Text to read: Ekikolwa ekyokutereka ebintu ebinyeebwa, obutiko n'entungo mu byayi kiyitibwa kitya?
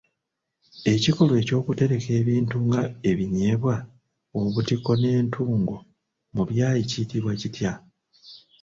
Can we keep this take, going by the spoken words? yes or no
no